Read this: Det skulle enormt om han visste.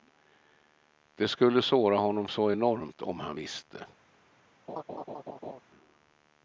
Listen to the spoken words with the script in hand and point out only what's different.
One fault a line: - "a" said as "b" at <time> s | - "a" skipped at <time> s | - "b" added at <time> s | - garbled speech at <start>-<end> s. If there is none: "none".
- "såra honom så" added at 1.6 s